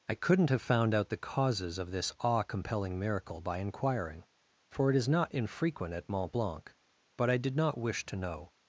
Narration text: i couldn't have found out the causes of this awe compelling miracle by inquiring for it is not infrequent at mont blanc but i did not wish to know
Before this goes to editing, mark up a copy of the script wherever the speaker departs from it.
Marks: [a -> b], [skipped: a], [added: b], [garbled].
i couldn't have found out the causes of this awe compelling miracle by inquiring for it is not infrequent at mont blanc but i did not wish to know